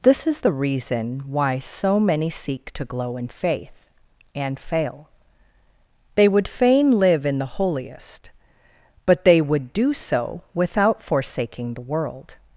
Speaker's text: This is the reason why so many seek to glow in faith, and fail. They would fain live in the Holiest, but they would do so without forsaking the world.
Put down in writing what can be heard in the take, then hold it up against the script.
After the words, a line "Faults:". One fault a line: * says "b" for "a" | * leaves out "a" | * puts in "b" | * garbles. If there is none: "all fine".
This is the reason why so many seek to glow in faith, and fail. They would fain live in the Holiest, but they would do so without forsaking the world.
Faults:
all fine